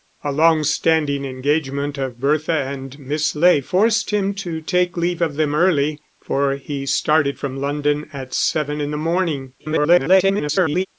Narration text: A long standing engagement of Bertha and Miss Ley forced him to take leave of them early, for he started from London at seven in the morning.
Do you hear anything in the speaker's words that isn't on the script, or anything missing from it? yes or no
yes